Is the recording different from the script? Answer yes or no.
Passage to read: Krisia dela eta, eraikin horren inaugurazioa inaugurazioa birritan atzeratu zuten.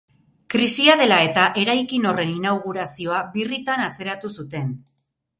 yes